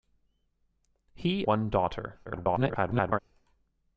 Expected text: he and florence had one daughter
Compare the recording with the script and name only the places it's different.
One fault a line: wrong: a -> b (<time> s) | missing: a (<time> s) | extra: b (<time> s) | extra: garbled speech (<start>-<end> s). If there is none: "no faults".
missing: and florence had (1.4 s)
extra: garbled speech (2.3-3.2 s)